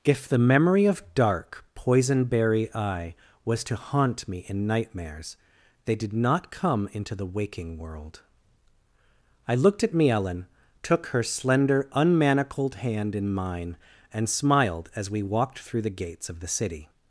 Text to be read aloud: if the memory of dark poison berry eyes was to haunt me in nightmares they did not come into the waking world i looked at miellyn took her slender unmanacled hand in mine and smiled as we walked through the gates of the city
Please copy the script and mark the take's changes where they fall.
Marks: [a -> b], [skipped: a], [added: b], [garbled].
if the memory of dark poison berry [eyes -> eye] was to haunt me in nightmares they did not come into the waking world i looked at miellyn took her slender unmanacled hand in mine and smiled as we walked through the gates of the city